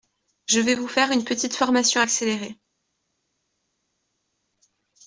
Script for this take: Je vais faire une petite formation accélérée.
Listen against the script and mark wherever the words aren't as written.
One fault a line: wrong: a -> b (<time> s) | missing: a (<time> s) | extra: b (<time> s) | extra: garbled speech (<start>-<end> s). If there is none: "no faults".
extra: vous (0.7 s)